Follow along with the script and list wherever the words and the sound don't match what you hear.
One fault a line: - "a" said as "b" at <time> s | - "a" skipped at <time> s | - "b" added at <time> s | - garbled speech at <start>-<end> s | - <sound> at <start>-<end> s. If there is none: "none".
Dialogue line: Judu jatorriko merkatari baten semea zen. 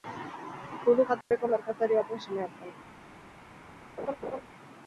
- dropout at 1.2-1.3 s
- laugh at 4.0-4.4 s